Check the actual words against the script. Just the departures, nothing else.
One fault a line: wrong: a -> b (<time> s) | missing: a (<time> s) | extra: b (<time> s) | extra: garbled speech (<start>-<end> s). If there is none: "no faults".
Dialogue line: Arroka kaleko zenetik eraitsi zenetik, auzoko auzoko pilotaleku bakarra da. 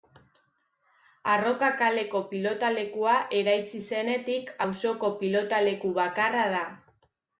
wrong: zenetik -> pilotalekua (2.3 s)
missing: auzoko (5.1 s)